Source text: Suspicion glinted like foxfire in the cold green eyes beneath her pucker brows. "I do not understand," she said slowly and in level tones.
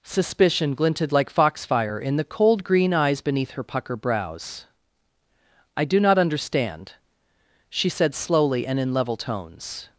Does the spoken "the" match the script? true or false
true